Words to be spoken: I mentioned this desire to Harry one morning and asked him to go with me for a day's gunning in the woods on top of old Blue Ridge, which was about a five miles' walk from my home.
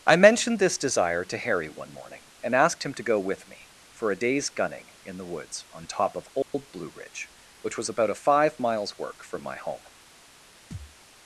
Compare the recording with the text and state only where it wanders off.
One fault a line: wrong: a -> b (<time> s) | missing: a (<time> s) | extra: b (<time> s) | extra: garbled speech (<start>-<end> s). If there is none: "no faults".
wrong: walk -> work (9.0 s)